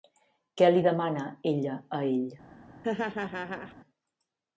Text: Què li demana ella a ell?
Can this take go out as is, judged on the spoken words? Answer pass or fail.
pass